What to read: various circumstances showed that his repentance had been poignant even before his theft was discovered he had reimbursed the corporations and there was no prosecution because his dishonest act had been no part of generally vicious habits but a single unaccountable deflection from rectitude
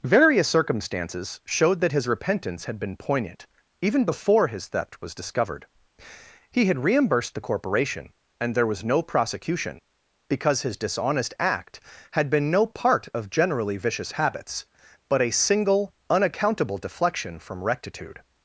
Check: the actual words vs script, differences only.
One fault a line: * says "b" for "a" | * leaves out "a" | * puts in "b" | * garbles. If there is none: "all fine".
* says "corporation" for "corporations"